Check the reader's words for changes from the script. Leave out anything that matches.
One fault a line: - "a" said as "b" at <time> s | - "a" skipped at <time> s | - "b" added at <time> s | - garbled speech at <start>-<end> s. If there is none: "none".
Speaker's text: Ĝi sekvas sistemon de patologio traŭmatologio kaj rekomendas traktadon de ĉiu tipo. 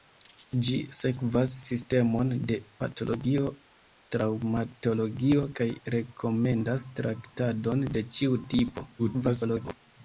- garbled speech at 9.0-9.8 s